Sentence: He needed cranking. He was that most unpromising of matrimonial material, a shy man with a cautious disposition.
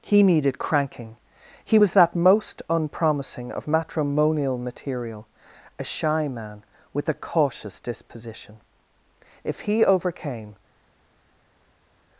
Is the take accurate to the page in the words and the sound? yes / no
no